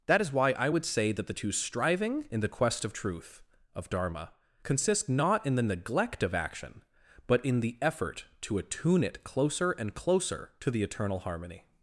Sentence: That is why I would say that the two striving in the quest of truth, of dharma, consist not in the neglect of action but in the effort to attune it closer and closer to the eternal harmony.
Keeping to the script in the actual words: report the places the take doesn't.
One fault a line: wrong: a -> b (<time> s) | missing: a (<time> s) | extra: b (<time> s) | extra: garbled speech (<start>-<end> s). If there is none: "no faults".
no faults